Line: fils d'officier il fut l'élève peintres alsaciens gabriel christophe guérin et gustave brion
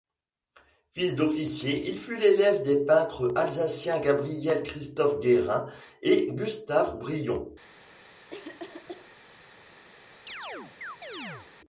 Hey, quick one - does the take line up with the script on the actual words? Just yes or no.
no